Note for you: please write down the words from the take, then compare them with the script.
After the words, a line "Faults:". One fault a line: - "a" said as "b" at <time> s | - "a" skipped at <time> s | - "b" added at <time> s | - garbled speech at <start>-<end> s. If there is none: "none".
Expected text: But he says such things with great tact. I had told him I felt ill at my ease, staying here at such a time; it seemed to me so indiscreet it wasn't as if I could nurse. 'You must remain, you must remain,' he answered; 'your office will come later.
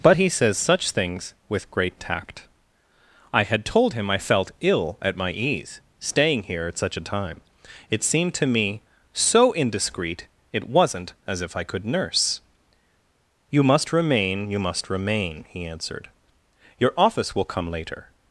But he says such things with great tact. I had told him I felt ill at my ease, staying here at such a time; it seemed to me so indiscreet it wasn't as if I could nurse. 'You must remain, you must remain,' he answered; 'your office will come later.
Faults:
none